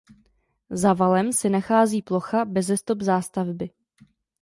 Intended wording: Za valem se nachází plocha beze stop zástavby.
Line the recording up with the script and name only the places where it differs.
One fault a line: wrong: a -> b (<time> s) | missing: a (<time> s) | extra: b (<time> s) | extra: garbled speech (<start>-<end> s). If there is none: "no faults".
no faults